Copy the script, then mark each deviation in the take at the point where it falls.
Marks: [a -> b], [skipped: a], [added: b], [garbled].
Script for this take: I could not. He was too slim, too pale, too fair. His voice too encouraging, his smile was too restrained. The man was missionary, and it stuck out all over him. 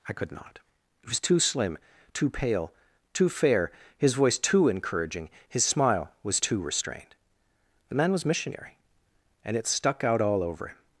I could not. He was too slim, too pale, too fair. His voice too encouraging, his smile was too restrained. The man was missionary, and it stuck out all over him.